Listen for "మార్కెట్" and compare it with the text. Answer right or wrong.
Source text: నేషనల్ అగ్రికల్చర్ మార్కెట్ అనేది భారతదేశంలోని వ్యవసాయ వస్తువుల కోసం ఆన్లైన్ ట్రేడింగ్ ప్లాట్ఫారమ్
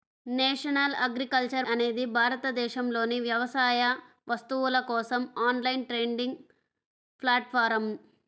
wrong